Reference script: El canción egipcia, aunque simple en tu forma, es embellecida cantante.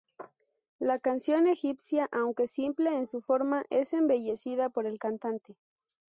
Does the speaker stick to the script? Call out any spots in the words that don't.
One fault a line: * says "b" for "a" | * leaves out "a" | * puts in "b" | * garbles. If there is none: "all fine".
* says "La" for "El"
* says "su" for "tu"
* puts in "por el"